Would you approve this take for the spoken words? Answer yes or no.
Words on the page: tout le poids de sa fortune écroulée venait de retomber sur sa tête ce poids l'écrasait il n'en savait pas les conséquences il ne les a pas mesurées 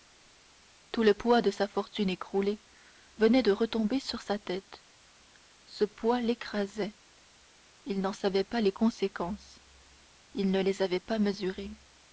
no